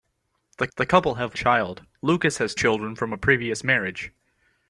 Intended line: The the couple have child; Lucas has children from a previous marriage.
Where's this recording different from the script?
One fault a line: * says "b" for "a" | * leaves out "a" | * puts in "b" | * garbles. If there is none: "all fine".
all fine